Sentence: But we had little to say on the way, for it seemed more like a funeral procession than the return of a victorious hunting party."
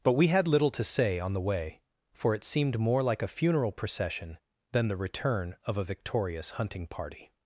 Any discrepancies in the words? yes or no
no